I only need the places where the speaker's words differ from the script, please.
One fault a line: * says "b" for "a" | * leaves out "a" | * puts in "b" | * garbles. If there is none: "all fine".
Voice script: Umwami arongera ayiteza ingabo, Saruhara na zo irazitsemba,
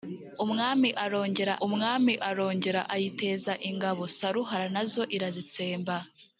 * puts in "umwami arongera"